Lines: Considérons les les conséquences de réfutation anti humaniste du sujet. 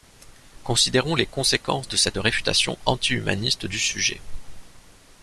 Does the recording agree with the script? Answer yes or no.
no